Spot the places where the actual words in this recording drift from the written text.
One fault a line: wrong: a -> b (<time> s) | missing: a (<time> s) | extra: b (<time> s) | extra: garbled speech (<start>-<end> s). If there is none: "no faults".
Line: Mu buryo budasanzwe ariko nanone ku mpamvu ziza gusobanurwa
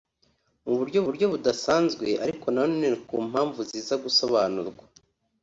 extra: buryo (1.1 s)